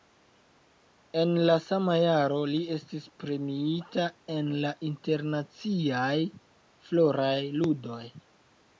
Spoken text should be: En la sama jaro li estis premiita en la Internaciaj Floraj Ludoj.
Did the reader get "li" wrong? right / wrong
right